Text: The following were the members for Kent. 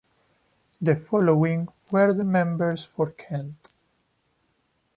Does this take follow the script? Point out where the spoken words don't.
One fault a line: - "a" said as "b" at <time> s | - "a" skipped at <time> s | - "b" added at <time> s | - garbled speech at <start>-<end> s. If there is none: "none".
none